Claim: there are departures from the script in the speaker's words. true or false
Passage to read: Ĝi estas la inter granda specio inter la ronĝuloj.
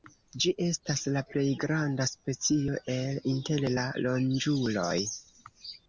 true